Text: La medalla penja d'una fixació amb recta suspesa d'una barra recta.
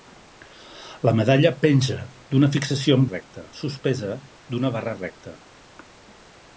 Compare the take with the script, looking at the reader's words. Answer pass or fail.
pass